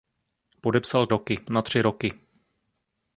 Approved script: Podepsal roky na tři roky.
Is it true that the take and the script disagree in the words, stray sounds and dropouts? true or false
false